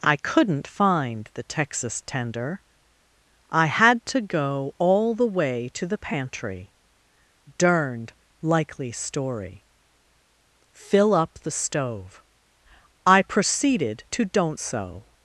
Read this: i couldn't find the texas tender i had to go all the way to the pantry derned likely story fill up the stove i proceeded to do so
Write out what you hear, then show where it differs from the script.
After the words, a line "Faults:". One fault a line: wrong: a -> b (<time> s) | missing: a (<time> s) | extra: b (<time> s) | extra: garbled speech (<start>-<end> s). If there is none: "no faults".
i couldn't find the texas tender i had to go all the way to the pantry derned likely story fill up the stove i proceeded to don't so
Faults:
wrong: do -> don't (14.2 s)